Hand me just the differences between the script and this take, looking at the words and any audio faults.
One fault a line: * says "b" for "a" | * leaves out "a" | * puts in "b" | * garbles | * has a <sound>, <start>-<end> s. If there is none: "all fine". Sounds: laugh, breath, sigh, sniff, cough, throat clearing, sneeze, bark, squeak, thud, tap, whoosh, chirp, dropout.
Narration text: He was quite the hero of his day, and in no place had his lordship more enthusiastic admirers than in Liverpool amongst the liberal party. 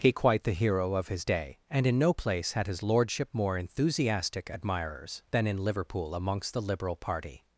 * leaves out "was"